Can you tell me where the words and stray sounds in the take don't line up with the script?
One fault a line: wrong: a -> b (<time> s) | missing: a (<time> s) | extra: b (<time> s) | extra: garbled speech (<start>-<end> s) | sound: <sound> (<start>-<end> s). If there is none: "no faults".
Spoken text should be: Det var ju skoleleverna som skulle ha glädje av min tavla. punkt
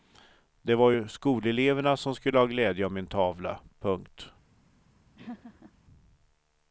sound: laugh (5.2-5.7 s)